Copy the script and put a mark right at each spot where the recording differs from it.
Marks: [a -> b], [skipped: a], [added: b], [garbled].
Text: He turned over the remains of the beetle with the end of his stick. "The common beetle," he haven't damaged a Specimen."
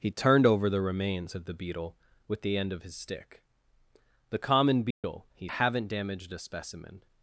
He turned over the remains of the beetle with the end of his stick. "The common beetle," he haven't damaged a Specimen."